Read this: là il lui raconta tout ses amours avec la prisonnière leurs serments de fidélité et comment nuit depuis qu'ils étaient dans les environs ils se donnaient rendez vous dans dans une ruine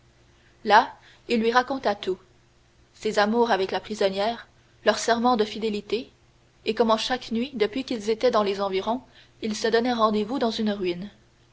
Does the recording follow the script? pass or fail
fail